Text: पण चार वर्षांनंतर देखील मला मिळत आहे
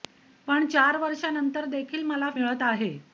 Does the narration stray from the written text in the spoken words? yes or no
no